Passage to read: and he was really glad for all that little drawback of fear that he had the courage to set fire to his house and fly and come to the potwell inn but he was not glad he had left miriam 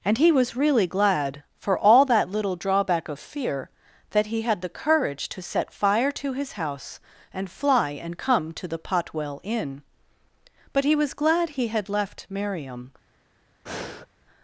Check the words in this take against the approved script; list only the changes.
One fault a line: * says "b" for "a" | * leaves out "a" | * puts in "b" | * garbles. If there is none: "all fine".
* leaves out "not"